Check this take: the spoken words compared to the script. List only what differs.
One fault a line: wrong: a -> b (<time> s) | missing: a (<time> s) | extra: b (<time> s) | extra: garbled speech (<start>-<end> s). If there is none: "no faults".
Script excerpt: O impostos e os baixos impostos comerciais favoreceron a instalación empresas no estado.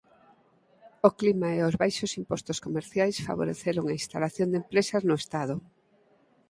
wrong: impostos -> clima (1.2 s)
extra: de (4.5 s)